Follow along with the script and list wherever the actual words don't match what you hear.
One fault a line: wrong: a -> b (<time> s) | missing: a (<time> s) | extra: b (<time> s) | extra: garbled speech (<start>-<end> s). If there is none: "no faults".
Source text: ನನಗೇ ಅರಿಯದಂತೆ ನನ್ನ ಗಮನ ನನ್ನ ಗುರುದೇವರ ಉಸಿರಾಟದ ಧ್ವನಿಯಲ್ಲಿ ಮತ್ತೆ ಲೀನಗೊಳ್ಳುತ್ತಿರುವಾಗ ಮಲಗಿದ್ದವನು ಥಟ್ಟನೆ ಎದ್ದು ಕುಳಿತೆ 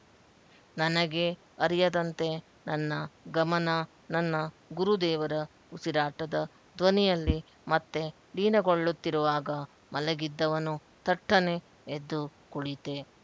no faults